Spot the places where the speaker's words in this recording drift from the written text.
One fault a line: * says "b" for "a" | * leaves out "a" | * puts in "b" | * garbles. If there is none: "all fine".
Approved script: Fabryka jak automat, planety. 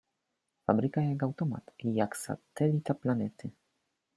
* puts in "jak satelita"